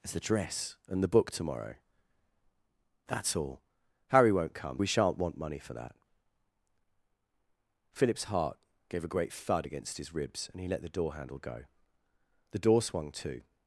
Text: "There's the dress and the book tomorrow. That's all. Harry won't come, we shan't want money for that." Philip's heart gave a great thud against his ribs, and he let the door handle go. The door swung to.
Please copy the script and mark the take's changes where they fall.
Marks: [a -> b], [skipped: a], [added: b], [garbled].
"There's the dress and the book tomorrow. That's all. Harry won't come, we shan't want money for that." Philip's heart gave a great thud against his ribs, and he let the door handle go. The door swung to.